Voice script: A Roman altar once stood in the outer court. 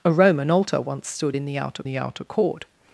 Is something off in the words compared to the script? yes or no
yes